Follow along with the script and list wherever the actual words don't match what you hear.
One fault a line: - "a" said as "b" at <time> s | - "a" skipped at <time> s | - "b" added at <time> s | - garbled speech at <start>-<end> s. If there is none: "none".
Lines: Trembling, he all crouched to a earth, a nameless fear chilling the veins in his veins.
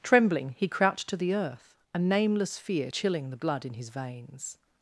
- "all" skipped at 0.7 s
- "a" said as "the" at 1.2 s
- "veins" said as "blood" at 3.4 s